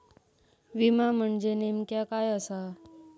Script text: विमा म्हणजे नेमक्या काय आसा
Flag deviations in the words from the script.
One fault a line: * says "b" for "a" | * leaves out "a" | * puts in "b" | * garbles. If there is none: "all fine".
all fine